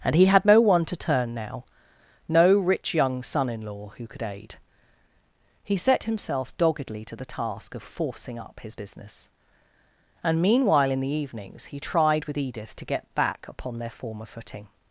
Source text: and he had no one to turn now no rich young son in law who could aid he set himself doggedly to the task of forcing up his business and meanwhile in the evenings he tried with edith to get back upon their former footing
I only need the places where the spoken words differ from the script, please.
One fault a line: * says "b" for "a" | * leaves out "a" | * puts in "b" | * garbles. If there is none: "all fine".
all fine